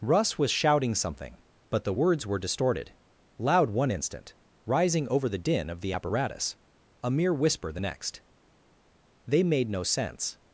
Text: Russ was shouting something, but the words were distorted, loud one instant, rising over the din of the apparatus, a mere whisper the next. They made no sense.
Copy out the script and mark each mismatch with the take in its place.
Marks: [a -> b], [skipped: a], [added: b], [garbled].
Russ was shouting something, but the words were distorted, loud one instant, rising over the din of the apparatus, a mere whisper the next. They made no sense.